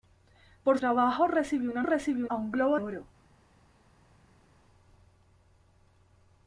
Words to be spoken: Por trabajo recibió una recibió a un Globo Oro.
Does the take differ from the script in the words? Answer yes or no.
no